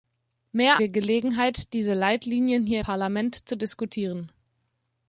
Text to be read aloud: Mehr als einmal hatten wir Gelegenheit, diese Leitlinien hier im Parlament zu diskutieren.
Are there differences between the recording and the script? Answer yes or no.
yes